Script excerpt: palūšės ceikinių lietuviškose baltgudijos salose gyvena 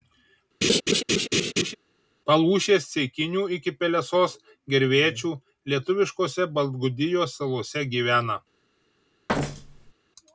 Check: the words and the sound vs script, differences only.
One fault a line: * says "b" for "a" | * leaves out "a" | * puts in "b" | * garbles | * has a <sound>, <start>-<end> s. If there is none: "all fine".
* has a laugh, 0.6-1.7 s
* puts in "iki pelesos gervėčių"
* has a thud, 9.3-9.9 s